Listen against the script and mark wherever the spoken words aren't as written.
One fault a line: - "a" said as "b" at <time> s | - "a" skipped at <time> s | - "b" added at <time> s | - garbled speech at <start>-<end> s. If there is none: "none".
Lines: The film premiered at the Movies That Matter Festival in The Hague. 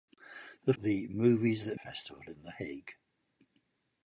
- "film premiered at" skipped at 0.7 s
- "Matter" skipped at 1.8 s